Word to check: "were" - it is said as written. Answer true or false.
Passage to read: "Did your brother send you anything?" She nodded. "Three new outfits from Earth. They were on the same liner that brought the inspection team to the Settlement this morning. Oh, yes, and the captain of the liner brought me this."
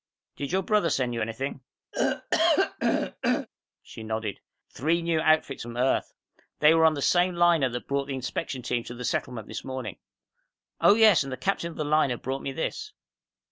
true